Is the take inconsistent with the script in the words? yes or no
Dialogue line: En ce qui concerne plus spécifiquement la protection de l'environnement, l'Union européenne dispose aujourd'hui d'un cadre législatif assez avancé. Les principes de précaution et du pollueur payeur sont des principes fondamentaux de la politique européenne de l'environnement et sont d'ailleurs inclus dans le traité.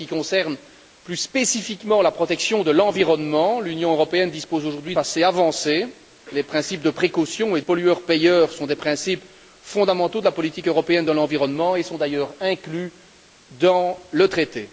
yes